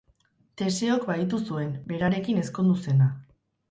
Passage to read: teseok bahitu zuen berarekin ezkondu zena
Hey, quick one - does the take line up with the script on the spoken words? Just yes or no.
yes